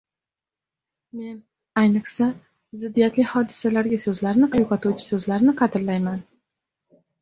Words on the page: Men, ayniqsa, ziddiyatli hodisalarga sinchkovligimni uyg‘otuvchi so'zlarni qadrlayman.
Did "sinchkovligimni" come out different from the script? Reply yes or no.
yes